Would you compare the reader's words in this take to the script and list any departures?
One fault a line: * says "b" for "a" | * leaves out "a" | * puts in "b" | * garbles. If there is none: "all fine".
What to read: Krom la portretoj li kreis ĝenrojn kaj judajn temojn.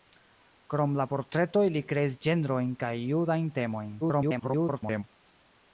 * garbles